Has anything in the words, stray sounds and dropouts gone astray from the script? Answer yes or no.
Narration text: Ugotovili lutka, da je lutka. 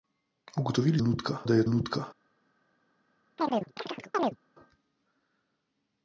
yes